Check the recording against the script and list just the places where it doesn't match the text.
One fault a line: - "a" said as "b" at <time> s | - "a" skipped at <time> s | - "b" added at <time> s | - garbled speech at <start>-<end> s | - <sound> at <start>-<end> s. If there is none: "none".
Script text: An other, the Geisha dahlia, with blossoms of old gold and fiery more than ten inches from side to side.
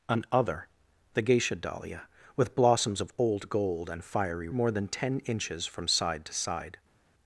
none